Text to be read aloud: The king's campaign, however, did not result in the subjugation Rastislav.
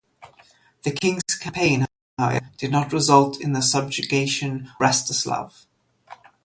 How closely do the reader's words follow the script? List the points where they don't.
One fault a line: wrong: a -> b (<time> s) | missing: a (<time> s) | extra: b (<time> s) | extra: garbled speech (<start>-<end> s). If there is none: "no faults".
no faults